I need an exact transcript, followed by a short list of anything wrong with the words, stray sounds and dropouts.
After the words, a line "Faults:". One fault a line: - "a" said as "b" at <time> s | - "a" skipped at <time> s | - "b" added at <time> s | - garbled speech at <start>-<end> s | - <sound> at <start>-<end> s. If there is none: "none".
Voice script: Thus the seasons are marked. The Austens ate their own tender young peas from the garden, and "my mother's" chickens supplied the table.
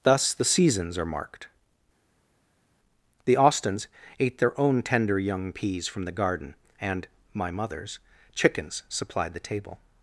Thus the seasons are marked. The Austens ate their own tender young peas from the garden, and "my mother's" chickens supplied the table.
Faults:
none